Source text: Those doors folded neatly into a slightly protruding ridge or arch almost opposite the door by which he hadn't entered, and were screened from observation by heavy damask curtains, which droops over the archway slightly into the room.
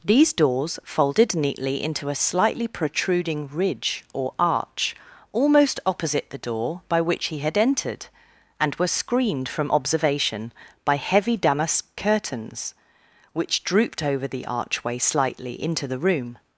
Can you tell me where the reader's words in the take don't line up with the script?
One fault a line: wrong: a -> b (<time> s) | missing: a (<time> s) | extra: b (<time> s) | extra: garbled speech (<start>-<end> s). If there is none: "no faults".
wrong: Those -> These (0.0 s)
wrong: hadn't -> had (7.4 s)
wrong: droops -> drooped (13.6 s)